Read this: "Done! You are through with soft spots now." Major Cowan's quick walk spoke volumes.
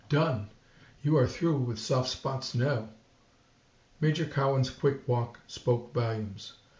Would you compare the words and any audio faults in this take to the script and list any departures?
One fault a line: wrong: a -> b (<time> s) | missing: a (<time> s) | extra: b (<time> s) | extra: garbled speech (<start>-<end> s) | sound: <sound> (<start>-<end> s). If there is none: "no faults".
no faults